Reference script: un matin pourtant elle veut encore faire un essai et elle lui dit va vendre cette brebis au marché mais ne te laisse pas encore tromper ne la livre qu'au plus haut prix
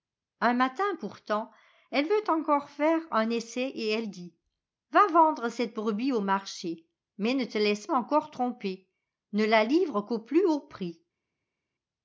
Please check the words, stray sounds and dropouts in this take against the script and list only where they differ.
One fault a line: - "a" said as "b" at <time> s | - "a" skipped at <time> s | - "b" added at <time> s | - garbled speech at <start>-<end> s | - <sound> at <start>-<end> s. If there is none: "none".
- "lui" skipped at 4.1 s
- "pas" skipped at 7.9 s